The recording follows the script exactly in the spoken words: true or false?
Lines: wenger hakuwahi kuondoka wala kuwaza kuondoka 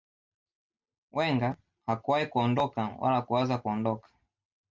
true